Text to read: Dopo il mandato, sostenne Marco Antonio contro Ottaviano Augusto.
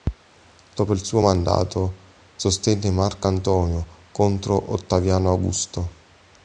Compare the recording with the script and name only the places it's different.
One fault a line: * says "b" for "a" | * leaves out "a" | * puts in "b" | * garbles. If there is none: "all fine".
* puts in "suo"